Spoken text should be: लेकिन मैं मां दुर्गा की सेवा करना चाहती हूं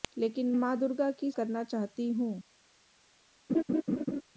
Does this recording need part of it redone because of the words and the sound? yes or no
yes